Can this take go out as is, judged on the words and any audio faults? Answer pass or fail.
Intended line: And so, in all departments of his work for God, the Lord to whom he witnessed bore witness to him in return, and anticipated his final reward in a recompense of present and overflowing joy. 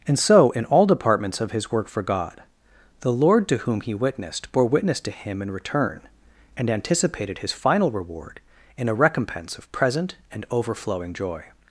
pass